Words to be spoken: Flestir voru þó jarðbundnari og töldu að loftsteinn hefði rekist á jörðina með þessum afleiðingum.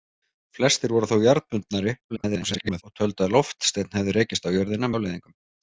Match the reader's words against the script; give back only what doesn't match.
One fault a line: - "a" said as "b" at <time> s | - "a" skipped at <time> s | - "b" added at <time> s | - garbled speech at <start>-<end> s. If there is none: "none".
- garbled speech at 2.1-2.8 s
- "með þessum" skipped at 4.9 s